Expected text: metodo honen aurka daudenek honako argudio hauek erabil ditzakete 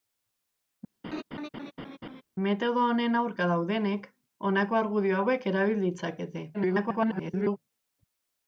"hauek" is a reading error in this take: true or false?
false